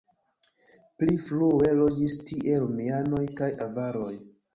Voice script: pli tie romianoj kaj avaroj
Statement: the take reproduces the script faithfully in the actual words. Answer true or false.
false